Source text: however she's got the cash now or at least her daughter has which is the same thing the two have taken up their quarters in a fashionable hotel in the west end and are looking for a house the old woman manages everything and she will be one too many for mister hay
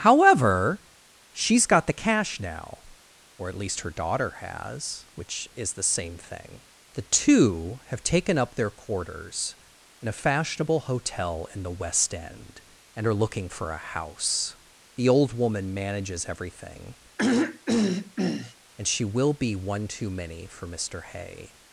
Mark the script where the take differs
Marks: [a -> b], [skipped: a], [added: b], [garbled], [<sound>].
however she's got the cash now or at least her daughter has which is the same thing the two have taken up their quarters in a fashionable hotel in the west end and are looking for a house the old woman manages everything [throat clearing] and she will be one too many for mister hay